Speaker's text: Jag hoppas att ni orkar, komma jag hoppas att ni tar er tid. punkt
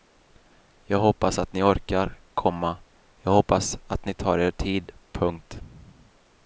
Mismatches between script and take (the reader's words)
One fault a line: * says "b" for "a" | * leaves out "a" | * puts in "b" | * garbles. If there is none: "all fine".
all fine